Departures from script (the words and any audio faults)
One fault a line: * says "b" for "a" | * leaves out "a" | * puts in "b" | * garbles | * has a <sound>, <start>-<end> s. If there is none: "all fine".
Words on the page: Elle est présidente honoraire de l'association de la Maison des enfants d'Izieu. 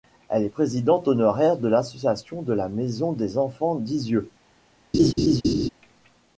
* has a laugh, 4.9-5.7 s